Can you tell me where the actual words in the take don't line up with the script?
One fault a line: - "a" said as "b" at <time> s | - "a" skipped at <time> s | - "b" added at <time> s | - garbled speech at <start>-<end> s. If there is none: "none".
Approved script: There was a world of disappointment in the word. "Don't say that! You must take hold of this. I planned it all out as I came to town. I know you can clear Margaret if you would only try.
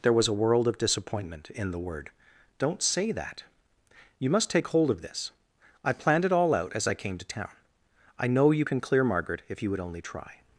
none